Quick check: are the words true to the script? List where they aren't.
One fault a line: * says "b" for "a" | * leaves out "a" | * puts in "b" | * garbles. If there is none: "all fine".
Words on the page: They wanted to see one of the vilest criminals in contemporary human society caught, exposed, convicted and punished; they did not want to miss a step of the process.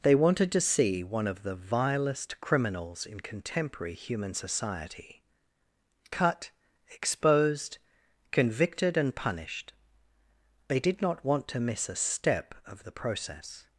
* says "cut" for "caught"